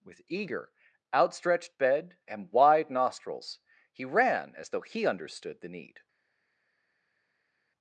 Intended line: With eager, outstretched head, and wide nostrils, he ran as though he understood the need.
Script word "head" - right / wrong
wrong